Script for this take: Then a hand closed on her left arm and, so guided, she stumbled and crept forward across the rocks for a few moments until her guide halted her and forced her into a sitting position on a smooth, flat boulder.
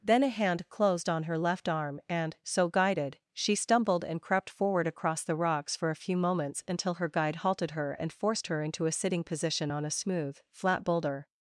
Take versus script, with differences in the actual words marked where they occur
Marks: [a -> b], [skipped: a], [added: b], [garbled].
Then a hand closed on her left arm and, so guided, she stumbled and crept forward across the rocks for a few moments until her guide halted her and forced her into a sitting position on a smooth, flat boulder.